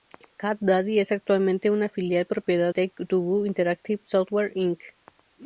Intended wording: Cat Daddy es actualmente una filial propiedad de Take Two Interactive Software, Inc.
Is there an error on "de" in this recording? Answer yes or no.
yes